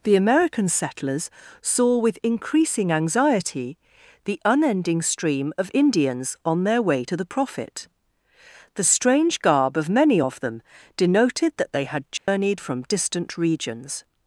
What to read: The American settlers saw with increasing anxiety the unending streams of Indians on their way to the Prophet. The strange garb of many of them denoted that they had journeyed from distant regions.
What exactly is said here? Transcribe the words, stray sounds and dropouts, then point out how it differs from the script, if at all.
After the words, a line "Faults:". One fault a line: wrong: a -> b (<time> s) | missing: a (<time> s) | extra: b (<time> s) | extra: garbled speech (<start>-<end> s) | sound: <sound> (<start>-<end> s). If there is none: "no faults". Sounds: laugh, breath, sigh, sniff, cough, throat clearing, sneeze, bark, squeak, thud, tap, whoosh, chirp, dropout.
The American settlers saw with increasing anxiety the unending stream of Indians on their way to the Prophet. The strange garb of many of them denoted that they had journeyed from distant regions.
Faults:
wrong: streams -> stream (5.0 s)
sound: dropout (12.2-12.3 s)